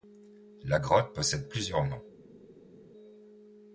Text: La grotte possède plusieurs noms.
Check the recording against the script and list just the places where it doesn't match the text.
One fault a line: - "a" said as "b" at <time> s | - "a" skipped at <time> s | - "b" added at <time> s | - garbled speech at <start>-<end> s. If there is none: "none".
none